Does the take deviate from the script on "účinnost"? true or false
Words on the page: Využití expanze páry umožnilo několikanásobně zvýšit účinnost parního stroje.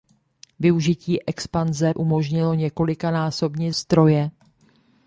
true